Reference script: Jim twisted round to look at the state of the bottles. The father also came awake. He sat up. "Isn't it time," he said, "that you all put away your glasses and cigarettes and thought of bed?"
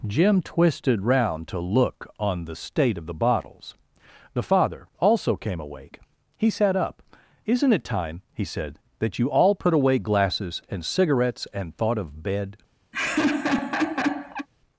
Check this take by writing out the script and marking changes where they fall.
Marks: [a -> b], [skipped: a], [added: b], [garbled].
Jim twisted round to look [at -> on] the state of the bottles. The father also came awake. He sat up. "Isn't it time," he said, "that you all put away [skipped: your] glasses and cigarettes and thought of bed?"